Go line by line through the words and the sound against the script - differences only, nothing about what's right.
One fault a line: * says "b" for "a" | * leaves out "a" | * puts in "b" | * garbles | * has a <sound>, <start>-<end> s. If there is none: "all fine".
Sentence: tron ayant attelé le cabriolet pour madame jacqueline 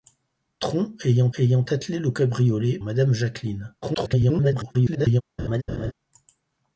* puts in "ayant"
* leaves out "pour"
* garbles
* has a laugh, 5.4-5.9 s